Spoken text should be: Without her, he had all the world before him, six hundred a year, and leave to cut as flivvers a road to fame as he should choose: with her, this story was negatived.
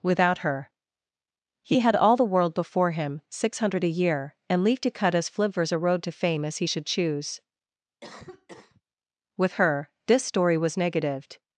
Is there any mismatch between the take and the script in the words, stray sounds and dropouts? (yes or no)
yes